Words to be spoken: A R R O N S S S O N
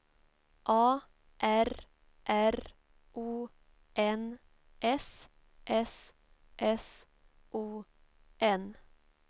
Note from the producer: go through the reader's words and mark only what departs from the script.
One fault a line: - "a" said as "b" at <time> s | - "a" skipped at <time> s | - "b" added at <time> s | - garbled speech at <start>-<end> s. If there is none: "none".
none